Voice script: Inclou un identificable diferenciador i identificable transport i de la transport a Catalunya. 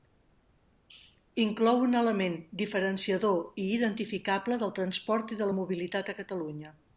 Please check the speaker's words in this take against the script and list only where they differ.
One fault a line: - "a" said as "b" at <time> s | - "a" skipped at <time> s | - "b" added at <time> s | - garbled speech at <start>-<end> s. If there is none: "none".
- "identificable" said as "element" at 2.0 s
- "del" added at 4.6 s
- "transport" said as "mobilitat" at 5.6 s